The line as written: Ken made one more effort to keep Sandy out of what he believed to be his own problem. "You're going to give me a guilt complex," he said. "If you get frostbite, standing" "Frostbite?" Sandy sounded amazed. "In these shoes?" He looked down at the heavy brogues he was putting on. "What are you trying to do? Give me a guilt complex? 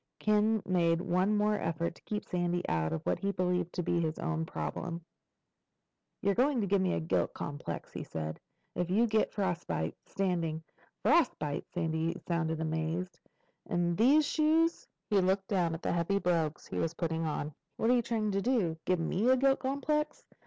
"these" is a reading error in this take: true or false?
false